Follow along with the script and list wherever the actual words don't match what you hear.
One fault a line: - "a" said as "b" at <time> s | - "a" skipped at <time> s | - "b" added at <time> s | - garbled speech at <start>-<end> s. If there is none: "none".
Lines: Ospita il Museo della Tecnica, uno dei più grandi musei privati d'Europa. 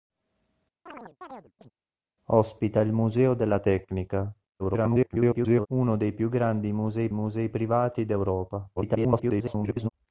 - garbled speech at 4.6-5.7 s
- "musei" added at 7.1 s
- garbled speech at 8.8-9.9 s